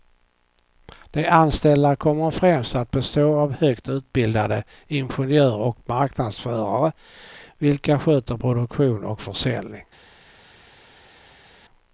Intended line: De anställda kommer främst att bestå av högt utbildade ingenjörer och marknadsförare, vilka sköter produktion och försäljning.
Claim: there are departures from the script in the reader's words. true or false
false